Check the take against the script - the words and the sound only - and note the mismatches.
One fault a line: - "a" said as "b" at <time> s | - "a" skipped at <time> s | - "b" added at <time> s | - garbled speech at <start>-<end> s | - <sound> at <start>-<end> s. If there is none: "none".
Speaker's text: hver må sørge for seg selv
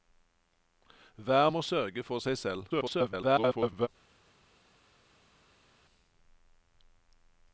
- garbled speech at 2.7-3.9 s